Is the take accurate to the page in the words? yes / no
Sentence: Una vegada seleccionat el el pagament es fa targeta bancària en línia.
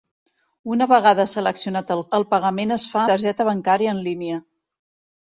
yes